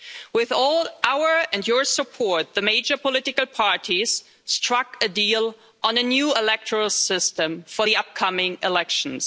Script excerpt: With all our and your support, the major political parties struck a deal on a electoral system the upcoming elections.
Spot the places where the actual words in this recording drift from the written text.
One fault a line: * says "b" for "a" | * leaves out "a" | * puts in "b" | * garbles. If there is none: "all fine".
* puts in "new"
* puts in "for"